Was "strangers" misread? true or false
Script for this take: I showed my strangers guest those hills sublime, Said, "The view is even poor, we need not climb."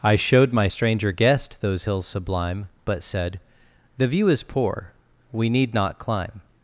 true